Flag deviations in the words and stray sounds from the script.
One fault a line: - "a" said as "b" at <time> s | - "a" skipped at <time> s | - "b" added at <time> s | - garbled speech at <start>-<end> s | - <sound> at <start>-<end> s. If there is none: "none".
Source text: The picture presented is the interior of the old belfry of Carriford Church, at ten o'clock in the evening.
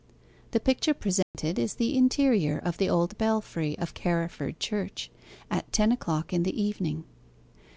- dropout at 1.2-1.3 s